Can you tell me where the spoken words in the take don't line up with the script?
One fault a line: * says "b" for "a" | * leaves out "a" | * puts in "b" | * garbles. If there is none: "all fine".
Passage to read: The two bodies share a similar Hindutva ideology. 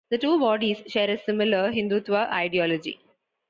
all fine